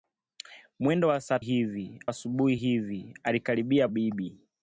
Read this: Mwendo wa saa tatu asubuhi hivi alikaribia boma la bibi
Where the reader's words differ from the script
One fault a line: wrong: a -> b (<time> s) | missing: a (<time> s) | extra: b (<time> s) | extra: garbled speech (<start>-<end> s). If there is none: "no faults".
wrong: tatu -> hivi (1.4 s)
missing: boma la (3.9 s)